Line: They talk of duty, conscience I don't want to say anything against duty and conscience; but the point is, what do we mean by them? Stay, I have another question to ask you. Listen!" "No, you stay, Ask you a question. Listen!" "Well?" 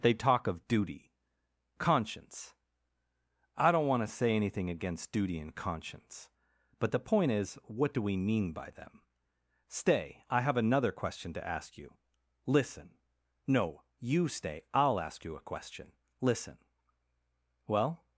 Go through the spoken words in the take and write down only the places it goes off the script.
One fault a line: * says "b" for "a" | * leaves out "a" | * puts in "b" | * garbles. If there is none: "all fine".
* puts in "I'll"